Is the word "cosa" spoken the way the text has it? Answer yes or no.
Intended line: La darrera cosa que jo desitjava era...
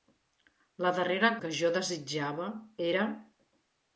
no